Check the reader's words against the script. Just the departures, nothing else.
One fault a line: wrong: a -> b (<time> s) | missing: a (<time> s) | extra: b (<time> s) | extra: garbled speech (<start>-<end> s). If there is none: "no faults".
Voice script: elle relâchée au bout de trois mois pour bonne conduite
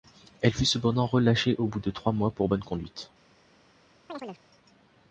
extra: fut cependant (0.5 s)